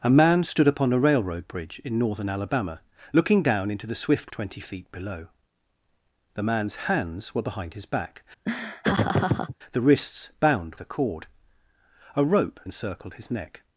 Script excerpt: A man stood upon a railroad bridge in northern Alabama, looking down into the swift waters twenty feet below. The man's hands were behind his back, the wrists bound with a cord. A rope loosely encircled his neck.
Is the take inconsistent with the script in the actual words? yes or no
yes